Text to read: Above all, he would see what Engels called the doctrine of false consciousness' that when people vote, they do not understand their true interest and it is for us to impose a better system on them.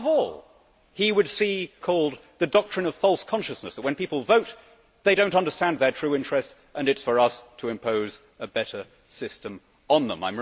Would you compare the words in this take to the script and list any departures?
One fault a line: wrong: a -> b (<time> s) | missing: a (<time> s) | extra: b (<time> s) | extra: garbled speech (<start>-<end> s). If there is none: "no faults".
missing: what Engels (1.7 s)